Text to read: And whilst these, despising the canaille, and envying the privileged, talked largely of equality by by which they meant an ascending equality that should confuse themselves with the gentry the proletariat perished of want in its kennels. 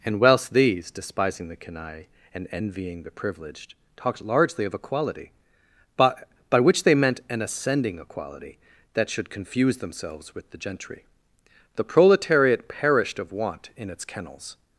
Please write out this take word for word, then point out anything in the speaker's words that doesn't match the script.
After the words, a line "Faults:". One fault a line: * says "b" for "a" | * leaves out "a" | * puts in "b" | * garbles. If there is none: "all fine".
And whilst these, despising the canaille, and envying the privileged, talked largely of equality by by which they meant an ascending equality that should confuse themselves with the gentry the proletariat perished of want in its kennels.
Faults:
all fine